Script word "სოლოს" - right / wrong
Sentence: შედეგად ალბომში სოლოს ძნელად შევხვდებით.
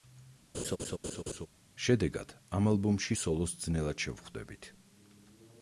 right